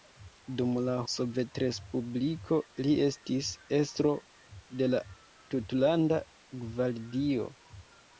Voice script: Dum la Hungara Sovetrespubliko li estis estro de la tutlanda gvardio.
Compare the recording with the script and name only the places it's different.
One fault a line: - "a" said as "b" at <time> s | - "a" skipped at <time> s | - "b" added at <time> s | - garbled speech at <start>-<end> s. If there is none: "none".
- "Hungara" skipped at 0.9 s